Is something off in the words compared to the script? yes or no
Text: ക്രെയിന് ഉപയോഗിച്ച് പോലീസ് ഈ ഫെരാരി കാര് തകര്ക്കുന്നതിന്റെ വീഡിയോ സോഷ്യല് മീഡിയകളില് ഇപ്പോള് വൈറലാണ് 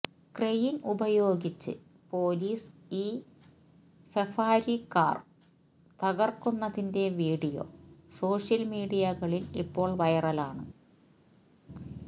no